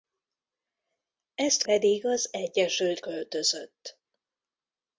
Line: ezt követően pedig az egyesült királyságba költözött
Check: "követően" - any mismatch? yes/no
yes